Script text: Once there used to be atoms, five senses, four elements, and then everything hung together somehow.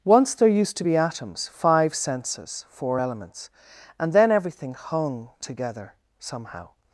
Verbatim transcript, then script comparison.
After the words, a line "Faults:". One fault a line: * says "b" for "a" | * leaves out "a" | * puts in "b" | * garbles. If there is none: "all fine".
Once there used to be atoms, five senses, four elements, and then everything hung together somehow.
Faults:
all fine